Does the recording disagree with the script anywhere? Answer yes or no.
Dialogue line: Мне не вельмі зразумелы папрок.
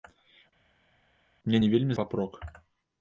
yes